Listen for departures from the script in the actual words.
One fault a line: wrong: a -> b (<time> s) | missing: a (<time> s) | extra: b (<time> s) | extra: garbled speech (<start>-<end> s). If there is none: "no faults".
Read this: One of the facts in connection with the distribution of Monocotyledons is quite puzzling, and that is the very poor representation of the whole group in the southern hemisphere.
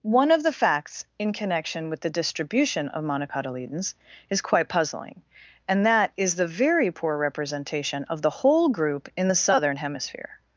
no faults